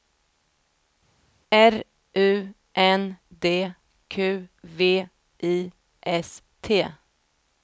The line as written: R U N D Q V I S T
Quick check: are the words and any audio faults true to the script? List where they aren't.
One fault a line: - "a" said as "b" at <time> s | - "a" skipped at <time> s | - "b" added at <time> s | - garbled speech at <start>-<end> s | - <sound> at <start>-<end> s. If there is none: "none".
none